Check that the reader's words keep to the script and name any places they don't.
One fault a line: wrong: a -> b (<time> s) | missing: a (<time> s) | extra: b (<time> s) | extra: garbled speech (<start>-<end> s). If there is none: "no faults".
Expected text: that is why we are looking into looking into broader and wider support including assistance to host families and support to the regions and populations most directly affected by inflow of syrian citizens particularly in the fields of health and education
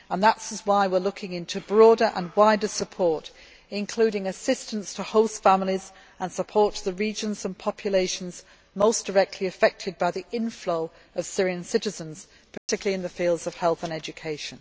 missing: looking into (1.6 s)
extra: the (10.1 s)